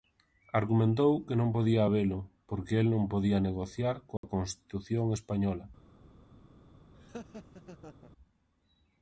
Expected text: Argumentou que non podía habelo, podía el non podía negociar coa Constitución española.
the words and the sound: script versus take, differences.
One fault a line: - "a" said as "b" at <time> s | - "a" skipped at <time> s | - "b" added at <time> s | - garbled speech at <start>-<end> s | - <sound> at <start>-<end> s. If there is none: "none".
- "podía" said as "porque" at 2.5 s
- dropout at 4.2-4.2 s
- laugh at 6.9-8.1 s